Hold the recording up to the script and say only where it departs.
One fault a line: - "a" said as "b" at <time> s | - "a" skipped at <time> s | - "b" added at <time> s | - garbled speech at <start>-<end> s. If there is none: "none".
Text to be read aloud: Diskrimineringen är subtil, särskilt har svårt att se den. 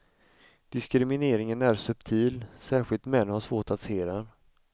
- "män" added at 3.1 s